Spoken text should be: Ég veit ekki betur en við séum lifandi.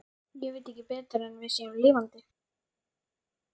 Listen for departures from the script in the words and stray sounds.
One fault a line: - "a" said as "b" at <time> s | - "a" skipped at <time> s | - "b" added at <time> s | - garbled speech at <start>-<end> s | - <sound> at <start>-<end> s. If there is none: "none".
none